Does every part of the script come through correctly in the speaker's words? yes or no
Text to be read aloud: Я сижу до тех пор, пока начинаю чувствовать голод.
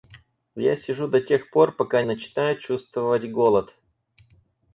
yes